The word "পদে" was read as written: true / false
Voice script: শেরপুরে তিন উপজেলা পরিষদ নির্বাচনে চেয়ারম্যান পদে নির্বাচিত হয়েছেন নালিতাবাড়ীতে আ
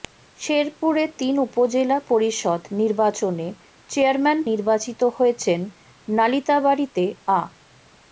false